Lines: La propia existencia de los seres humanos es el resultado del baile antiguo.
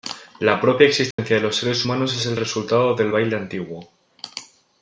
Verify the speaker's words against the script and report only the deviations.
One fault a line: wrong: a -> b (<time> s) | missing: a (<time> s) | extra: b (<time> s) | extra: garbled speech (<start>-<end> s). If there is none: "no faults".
no faults